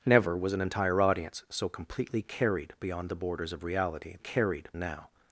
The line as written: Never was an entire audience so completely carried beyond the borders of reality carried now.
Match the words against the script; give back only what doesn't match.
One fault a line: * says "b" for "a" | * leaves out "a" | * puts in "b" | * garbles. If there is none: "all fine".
all fine